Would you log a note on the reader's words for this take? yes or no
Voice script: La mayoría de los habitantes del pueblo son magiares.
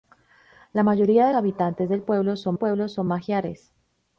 yes